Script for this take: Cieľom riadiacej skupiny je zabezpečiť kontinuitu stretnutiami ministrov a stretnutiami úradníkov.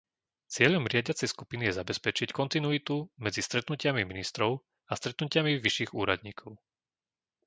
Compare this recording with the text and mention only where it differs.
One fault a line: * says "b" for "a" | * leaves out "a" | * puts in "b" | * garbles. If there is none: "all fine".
* puts in "medzi"
* puts in "vyšších"